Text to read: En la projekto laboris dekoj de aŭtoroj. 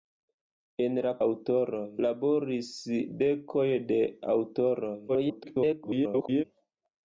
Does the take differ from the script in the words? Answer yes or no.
yes